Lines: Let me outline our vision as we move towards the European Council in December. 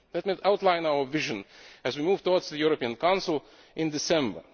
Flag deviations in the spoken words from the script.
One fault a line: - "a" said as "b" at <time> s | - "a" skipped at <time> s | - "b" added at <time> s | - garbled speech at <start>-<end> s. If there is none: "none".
none